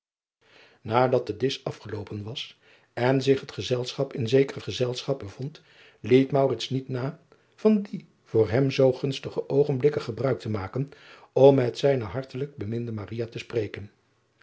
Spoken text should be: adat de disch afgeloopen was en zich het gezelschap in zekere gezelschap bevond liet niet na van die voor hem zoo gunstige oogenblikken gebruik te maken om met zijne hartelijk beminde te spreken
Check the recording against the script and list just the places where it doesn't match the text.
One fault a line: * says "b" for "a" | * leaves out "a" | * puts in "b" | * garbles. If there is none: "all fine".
all fine